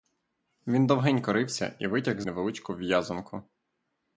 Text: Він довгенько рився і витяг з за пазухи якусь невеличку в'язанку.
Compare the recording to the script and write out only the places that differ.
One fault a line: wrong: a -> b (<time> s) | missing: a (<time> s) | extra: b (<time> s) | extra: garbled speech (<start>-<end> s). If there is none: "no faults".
missing: за пазухи якусь (2.2 s)